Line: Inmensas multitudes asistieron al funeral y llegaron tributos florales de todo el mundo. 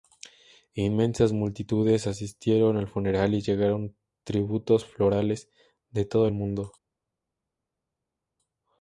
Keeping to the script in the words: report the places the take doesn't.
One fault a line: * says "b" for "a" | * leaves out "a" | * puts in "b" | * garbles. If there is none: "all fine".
all fine